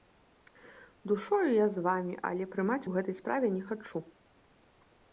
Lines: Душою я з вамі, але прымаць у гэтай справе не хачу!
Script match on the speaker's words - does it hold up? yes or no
yes